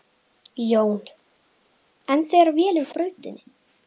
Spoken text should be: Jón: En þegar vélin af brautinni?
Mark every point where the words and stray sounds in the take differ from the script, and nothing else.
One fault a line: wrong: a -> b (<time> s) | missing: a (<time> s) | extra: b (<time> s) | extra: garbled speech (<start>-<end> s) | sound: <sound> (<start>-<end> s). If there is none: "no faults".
no faults